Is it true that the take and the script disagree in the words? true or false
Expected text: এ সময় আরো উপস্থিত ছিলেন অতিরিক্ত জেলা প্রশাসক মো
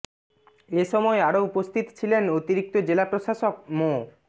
false